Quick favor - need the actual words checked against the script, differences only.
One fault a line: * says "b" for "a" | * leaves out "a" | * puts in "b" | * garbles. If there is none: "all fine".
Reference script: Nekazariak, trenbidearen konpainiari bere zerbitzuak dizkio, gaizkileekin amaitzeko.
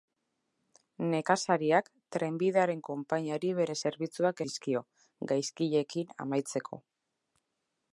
all fine